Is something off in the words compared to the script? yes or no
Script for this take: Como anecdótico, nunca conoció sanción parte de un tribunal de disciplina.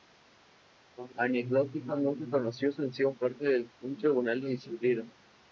no